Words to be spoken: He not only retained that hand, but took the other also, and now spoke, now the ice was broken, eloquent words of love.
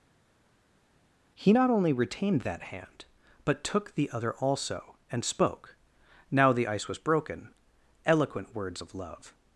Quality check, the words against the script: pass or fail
fail